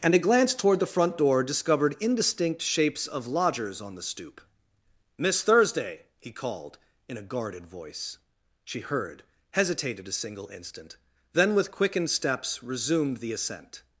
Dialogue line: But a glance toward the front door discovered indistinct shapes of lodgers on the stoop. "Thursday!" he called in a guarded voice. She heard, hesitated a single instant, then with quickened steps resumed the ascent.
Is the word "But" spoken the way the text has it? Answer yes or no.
no